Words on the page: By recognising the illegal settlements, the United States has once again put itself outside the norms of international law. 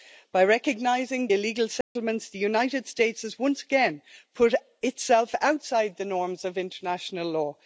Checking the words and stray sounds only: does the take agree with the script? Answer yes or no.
no